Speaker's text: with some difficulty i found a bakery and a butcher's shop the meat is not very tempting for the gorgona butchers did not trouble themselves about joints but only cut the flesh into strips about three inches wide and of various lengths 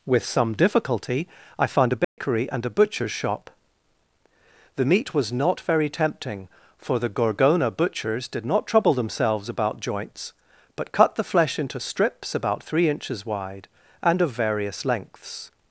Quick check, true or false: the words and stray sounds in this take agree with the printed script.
false